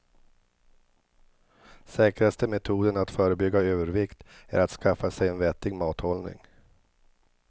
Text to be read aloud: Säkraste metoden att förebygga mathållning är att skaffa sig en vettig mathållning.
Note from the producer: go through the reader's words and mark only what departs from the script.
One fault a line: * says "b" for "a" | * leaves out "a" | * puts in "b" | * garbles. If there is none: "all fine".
* says "övervikt" for "mathållning"